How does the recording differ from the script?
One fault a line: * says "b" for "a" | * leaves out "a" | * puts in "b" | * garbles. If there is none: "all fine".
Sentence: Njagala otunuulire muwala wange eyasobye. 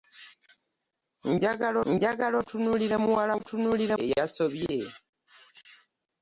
* puts in "njagala"
* says "otunuulire" for "wange"